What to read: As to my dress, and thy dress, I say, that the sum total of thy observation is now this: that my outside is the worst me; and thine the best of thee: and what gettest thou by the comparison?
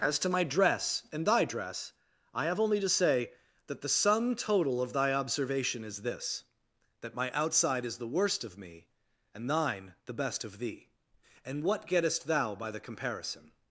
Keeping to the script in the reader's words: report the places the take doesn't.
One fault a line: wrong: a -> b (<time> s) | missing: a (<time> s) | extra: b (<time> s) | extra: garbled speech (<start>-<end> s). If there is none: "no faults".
extra: have only to (2.5 s)
missing: now (6.0 s)
extra: of (8.4 s)